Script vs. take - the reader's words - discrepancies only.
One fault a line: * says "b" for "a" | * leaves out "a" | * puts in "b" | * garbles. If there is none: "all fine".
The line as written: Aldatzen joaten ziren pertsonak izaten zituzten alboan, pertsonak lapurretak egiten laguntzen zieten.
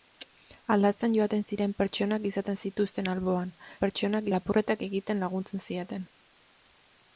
all fine